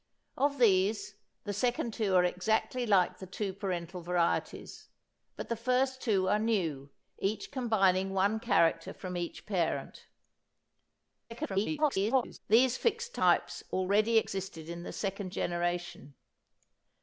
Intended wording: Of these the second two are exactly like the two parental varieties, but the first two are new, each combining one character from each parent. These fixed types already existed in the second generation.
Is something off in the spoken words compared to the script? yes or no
yes